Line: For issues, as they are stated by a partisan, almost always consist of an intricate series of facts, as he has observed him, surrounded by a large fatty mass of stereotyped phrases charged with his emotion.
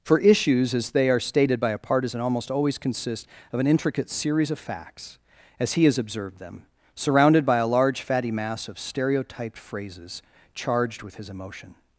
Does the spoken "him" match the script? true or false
false